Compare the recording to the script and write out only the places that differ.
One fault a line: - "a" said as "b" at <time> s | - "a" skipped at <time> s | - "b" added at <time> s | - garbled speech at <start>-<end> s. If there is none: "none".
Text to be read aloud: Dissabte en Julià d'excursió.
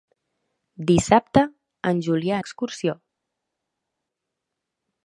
none